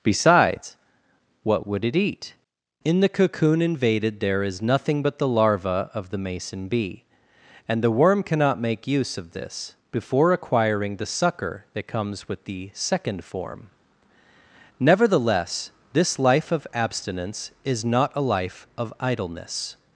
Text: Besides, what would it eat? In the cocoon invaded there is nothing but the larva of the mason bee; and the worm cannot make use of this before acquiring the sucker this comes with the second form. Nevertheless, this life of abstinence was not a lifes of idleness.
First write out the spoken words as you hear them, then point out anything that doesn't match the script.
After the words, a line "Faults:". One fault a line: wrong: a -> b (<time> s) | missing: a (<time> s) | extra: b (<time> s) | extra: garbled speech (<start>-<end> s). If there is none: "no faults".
Besides, what would it eat? In the cocoon invaded there is nothing but the larva of the mason bee; and the worm cannot make use of this before acquiring the sucker that comes with the second form. Nevertheless, this life of abstinence is not a life of idleness.
Faults:
wrong: this -> that (11.8 s)
wrong: was -> is (17.6 s)
wrong: lifes -> life (18.2 s)